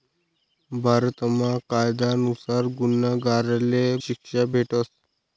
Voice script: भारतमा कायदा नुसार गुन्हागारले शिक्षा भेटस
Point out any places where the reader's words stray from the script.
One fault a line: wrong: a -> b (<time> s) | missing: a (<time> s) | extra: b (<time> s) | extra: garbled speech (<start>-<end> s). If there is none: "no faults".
no faults